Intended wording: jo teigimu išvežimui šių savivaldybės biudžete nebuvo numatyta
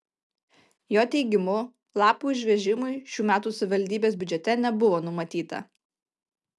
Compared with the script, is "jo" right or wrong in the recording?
right